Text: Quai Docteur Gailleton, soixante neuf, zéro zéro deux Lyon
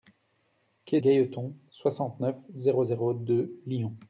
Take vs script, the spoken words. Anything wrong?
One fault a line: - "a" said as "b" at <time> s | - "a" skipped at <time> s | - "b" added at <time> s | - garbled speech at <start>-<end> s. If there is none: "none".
- "Docteur" skipped at 1.0 s